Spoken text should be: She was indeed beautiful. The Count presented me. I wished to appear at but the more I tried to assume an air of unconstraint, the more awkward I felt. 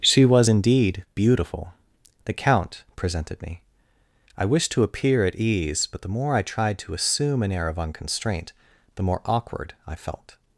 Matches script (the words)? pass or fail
fail